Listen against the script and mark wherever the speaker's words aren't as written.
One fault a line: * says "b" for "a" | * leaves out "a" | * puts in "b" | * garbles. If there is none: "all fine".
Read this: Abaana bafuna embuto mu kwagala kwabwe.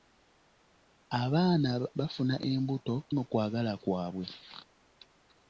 all fine